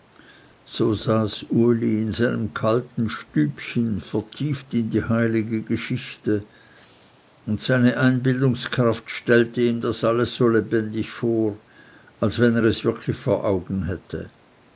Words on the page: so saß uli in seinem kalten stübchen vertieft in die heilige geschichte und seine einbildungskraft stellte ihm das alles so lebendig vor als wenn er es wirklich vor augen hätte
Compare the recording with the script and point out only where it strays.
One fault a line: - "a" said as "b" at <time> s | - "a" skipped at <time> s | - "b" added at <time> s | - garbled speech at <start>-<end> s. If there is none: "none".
none